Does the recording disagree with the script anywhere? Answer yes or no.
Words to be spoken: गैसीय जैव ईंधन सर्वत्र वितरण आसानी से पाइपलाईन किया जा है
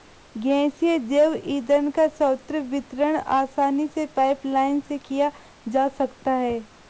yes